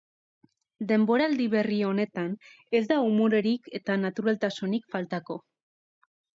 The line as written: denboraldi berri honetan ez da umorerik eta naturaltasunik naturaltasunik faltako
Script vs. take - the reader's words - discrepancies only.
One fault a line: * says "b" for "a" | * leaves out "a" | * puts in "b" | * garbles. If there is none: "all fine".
* leaves out "naturaltasunik"